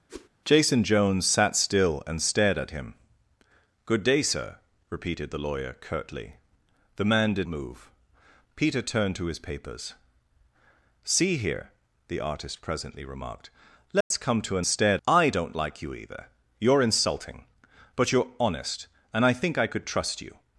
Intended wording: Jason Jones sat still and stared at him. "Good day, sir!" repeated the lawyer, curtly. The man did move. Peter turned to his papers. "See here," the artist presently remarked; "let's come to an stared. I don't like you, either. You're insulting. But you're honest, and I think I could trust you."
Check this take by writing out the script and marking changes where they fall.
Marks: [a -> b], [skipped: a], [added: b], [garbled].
Jason Jones sat still and stared at him. "Good day, sir!" repeated the lawyer, curtly. The man did move. Peter turned to his papers. "See here," the artist presently remarked; "let's come to an stared. I don't like you, either. You're insulting. But you're honest, and I think I could trust you."